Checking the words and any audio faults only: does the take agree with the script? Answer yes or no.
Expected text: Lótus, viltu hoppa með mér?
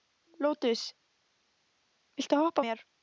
no